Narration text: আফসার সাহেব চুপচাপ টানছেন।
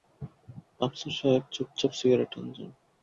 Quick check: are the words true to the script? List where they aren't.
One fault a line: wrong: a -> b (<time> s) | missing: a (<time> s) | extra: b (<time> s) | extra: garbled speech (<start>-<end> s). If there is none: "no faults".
extra: সিগারেট (2.0 s)